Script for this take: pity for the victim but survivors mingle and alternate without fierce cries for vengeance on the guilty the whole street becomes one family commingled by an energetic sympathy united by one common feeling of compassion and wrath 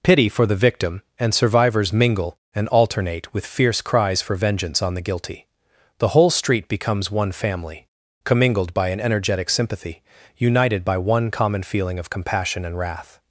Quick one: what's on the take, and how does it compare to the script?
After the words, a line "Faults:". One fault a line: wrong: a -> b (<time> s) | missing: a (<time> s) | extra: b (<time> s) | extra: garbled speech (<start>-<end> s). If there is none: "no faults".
pity for the victim and survivors mingle and alternate with fierce cries for vengeance on the guilty the whole street becomes one family commingled by an energetic sympathy united by one common feeling of compassion and wrath
Faults:
wrong: but -> and (1.2 s)
wrong: without -> with (3.4 s)